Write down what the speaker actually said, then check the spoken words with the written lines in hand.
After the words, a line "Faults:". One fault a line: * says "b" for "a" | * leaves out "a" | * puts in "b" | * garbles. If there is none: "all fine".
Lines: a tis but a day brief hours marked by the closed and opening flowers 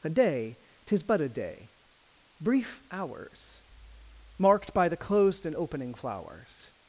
a day tis but a day brief hours marked by the closed and opening flowers
Faults:
* puts in "day"